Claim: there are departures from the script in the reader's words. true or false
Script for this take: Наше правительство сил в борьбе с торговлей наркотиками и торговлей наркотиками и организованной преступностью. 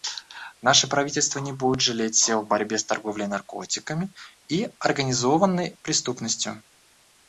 true